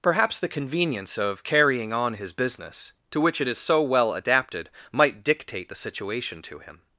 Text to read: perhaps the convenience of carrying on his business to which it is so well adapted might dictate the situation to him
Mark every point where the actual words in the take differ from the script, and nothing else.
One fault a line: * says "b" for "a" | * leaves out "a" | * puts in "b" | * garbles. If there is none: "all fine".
all fine